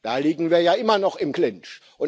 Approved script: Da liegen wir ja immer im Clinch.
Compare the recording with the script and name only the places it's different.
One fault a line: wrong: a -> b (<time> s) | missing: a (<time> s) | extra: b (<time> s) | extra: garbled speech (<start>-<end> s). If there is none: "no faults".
extra: noch (1.0 s)